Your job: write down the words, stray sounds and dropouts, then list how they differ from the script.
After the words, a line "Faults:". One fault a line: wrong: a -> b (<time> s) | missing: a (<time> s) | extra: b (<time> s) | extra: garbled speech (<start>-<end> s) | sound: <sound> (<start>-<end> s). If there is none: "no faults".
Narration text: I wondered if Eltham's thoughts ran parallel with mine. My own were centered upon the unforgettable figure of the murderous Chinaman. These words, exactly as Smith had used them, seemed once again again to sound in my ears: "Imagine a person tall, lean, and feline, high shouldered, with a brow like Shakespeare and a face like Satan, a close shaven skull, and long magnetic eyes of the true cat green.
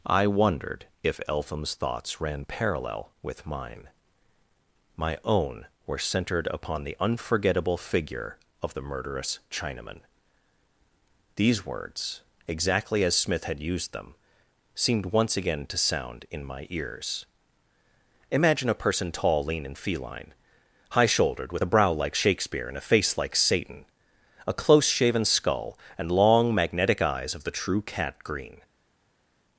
I wondered if Eltham's thoughts ran parallel with mine. My own were centered upon the unforgettable figure of the murderous Chinaman. These words, exactly as Smith had used them, seemed once again to sound in my ears: "Imagine a person tall, lean, and feline, high shouldered, with a brow like Shakespeare and a face like Satan, a close shaven skull, and long magnetic eyes of the true cat green.
Faults:
missing: again (15.7 s)